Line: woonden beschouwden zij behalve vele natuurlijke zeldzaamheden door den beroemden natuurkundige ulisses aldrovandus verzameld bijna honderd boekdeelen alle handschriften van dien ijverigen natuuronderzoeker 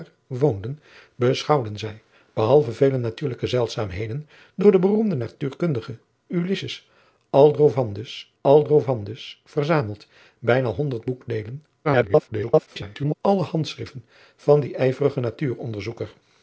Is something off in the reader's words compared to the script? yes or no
yes